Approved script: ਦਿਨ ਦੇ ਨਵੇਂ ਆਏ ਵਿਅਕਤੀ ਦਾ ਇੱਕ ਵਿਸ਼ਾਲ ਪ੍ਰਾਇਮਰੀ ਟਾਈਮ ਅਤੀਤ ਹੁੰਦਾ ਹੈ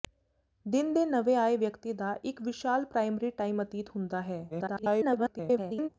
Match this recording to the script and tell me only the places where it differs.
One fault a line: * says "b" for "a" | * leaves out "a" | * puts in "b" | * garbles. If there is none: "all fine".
* garbles